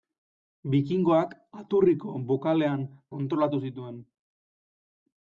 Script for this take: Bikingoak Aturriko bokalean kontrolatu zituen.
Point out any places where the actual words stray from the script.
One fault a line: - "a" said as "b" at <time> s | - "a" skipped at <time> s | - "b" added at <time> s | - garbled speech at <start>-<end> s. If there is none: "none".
none